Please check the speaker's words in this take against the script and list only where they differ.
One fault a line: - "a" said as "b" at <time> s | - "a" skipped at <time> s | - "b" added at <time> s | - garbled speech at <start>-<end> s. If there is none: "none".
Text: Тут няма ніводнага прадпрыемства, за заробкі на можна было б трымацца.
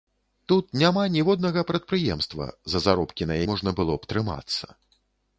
none